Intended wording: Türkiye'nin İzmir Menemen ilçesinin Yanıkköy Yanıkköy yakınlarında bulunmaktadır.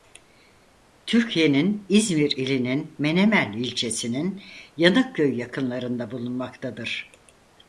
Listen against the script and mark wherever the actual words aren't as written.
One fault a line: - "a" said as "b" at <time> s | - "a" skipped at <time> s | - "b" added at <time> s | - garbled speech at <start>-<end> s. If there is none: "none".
- "ilinin" added at 2.3 s
- "Yanıkköy" skipped at 5.4 s